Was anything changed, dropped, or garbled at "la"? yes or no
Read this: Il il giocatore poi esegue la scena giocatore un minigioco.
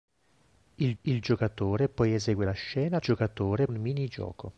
no